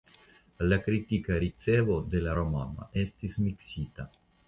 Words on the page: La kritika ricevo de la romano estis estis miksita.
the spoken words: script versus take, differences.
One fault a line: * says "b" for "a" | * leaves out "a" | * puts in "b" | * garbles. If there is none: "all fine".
* leaves out "estis"